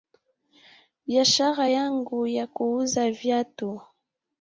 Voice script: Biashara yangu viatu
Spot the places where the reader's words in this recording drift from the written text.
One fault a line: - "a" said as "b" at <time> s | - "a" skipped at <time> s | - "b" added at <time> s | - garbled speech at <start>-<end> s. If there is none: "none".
- "ya kuuza" added at 2.3 s